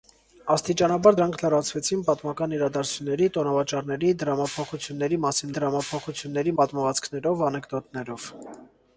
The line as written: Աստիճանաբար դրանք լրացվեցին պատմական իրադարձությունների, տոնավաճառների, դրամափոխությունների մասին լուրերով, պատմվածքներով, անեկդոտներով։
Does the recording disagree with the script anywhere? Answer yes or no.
yes